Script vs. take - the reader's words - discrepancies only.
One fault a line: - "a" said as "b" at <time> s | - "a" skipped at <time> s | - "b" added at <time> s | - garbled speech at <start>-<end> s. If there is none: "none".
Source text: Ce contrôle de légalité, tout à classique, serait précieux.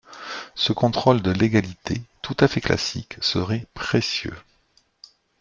- "fait" added at 2.5 s